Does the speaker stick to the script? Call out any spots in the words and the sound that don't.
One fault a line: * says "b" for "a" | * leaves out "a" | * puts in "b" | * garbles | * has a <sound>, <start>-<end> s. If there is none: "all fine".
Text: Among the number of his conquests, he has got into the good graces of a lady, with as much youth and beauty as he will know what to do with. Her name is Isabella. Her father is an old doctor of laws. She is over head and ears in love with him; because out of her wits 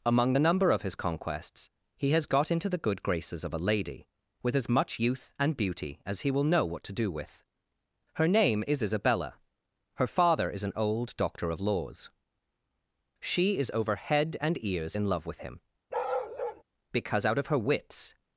* has a bark, 15.9-16.6 s